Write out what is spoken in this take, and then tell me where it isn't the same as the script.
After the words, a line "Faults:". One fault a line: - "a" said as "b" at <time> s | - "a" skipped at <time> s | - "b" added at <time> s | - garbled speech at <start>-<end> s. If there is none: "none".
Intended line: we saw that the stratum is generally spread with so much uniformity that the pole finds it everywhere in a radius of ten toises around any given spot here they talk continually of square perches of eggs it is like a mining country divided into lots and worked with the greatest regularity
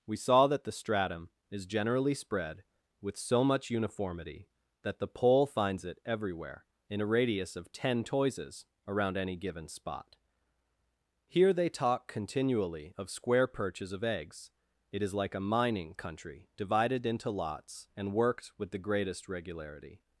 we saw that the stratum is generally spread with so much uniformity that the pole finds it everywhere in a radius of ten toises around any given spot here they talk continually of square perches of eggs it is like a mining country divided into lots and worked with the greatest regularity
Faults:
none